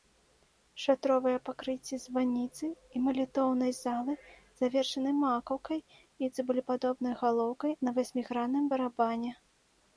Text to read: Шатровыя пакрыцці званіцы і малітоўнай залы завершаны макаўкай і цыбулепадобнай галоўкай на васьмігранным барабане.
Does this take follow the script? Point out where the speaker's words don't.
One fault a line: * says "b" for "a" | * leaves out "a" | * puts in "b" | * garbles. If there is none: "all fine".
all fine